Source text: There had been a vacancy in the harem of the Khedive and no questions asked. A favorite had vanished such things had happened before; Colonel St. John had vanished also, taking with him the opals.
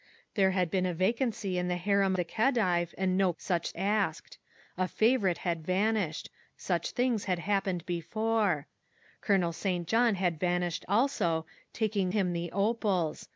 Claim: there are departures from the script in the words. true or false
true